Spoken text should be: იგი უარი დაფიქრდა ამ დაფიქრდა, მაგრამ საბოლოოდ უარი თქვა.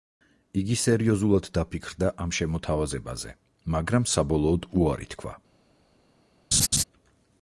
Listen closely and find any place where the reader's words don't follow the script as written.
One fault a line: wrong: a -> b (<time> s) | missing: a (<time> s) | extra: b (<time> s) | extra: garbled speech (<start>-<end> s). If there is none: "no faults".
wrong: უარი -> სერიოზულად (0.8 s)
wrong: დაფიქრდა -> შემოთავაზებაზე (2.4 s)